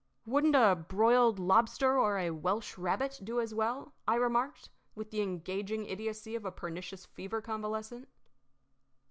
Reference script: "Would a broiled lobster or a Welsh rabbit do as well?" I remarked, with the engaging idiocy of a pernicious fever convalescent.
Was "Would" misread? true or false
true